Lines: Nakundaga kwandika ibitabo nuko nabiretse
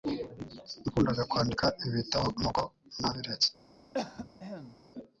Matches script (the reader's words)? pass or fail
pass